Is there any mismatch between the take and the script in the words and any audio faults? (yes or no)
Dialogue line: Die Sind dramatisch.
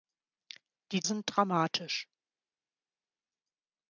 no